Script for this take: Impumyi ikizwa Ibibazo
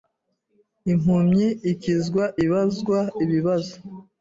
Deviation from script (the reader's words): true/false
true